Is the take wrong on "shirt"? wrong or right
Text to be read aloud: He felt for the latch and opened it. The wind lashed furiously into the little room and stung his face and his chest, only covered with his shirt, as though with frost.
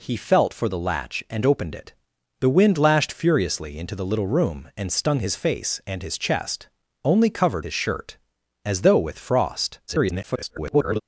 right